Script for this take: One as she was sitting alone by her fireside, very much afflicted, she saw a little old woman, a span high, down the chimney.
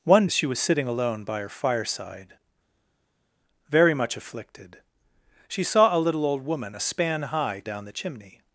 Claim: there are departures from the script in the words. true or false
false